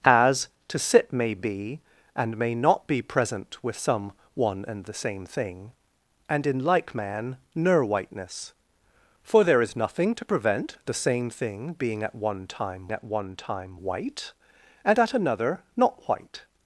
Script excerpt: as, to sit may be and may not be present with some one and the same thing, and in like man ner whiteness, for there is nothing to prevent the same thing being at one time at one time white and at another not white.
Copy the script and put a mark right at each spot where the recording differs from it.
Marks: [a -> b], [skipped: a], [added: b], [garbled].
as, to sit may be and may not be present with some one and the same thing, and in like man ner whiteness, for there is nothing to prevent the same thing being at one time at one time white and at another not white.